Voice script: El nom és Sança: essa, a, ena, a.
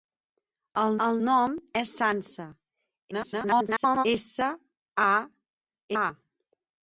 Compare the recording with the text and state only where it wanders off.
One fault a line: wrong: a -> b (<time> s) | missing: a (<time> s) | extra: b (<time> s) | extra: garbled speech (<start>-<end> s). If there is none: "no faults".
extra: el (1.1 s)
extra: garbled speech (3.1-4.1 s)
missing: ena (5.1 s)